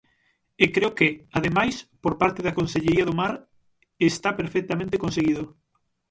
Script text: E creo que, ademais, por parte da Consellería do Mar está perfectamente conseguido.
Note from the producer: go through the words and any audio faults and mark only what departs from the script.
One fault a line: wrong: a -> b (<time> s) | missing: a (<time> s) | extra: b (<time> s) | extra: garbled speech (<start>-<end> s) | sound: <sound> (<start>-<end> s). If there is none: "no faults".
no faults